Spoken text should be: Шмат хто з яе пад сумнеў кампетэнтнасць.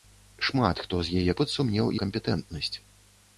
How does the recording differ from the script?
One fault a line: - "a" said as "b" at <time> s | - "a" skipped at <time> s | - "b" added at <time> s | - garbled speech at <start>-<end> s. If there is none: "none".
none